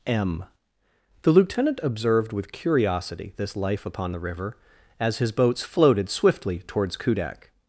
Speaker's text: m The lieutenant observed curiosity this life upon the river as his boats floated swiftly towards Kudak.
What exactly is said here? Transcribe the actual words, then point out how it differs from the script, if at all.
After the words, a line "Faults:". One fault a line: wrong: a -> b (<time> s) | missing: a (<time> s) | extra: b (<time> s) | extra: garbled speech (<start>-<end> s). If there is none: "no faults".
m The lieutenant observed with curiosity this life upon the river as his boats floated swiftly towards Kudak.
Faults:
extra: with (2.3 s)